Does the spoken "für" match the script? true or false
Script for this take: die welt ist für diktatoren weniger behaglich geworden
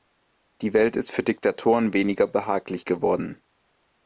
true